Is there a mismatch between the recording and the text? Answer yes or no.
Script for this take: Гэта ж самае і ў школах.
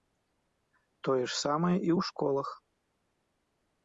yes